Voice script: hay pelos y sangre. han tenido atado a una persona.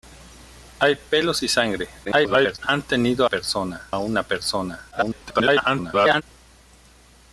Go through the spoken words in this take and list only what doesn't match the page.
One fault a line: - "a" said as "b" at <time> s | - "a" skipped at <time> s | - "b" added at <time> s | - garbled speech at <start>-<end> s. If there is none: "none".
- garbled speech at 2.0-2.6 s
- "atado" said as "persona" at 3.2 s
- garbled speech at 4.9-6.2 s